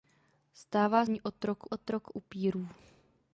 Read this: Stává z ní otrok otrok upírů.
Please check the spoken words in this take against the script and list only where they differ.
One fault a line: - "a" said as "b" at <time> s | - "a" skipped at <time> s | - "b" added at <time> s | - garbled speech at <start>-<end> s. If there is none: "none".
none